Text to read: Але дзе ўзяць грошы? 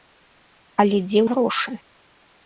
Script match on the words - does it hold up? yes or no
no